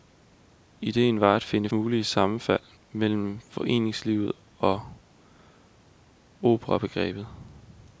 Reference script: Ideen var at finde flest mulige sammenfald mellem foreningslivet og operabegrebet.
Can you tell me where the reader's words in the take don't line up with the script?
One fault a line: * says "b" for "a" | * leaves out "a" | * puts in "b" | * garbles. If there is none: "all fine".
* leaves out "flest"